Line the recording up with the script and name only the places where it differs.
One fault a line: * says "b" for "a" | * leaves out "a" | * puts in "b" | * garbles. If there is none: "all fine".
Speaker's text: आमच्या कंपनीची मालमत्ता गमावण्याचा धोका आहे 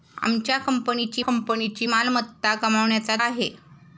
* puts in "कंपनीची"
* leaves out "धोका"